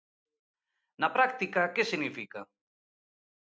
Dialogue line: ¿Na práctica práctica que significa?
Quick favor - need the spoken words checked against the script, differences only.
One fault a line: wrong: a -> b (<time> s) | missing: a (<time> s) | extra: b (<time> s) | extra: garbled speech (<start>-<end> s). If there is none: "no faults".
missing: práctica (1.6 s)